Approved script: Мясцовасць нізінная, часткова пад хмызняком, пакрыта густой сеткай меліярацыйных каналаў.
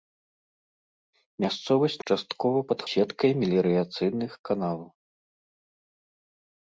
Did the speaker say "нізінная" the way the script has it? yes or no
no